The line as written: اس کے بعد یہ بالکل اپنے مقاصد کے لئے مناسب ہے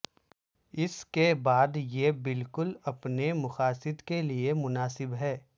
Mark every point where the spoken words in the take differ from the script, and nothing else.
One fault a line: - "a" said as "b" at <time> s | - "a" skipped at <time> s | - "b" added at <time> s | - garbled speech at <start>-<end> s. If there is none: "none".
none